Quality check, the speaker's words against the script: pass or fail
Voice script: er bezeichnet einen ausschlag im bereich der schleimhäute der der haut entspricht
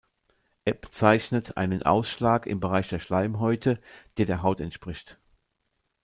pass